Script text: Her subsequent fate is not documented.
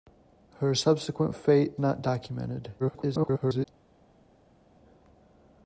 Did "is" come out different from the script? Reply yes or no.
yes